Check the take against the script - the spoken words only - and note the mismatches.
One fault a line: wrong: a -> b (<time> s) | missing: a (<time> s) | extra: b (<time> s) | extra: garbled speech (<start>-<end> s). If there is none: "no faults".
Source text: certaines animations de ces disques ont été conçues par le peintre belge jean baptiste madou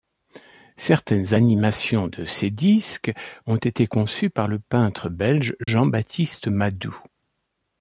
no faults